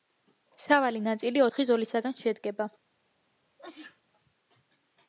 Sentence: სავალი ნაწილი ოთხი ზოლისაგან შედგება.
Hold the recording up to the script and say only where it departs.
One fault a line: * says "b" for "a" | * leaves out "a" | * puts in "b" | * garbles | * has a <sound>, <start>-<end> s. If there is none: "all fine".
* has a sneeze, 3.6-4.0 s